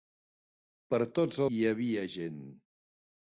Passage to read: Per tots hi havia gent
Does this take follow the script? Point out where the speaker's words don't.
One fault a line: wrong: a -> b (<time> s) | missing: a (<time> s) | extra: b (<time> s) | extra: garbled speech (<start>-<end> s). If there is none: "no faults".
no faults